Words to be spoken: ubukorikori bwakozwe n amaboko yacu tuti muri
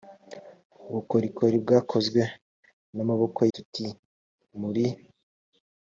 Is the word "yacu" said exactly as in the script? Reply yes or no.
no